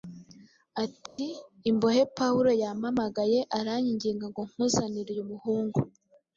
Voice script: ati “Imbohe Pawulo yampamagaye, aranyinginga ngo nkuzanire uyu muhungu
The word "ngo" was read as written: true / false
true